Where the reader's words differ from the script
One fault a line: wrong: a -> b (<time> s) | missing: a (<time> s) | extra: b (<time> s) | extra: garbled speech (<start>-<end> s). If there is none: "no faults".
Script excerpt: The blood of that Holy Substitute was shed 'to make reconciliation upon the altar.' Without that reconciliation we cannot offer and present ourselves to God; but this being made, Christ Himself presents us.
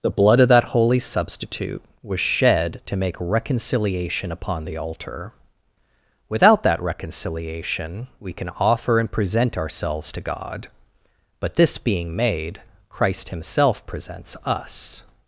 wrong: cannot -> can (8.3 s)